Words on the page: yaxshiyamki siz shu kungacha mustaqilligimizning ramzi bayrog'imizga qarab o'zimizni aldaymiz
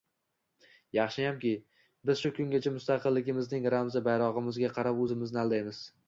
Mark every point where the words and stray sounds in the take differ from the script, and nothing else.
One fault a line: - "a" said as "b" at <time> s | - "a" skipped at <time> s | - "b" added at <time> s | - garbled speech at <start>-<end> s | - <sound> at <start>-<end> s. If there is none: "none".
- "siz" said as "biz" at 2.1 s